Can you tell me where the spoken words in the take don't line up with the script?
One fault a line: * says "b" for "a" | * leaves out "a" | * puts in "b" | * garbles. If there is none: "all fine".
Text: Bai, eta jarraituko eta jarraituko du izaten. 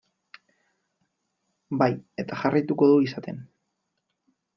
* leaves out "eta jarraituko"